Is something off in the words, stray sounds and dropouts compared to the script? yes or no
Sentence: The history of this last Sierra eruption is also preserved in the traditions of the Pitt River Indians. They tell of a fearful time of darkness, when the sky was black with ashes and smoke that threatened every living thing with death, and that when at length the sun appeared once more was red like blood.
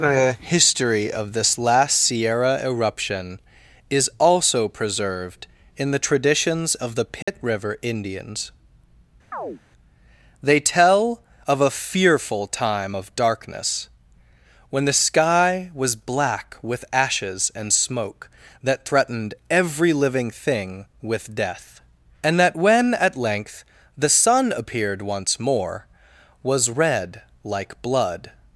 yes